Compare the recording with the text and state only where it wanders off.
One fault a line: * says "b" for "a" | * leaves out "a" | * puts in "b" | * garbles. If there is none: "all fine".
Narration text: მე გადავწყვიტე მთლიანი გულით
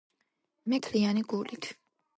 * leaves out "გადავწყვიტე"